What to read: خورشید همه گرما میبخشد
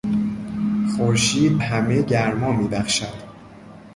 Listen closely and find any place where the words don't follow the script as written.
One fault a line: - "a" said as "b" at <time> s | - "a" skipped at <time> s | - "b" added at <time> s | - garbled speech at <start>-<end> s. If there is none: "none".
none